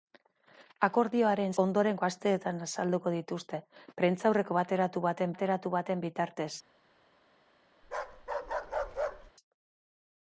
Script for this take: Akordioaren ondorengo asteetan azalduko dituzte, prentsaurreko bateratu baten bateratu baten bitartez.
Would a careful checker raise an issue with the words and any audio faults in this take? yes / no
yes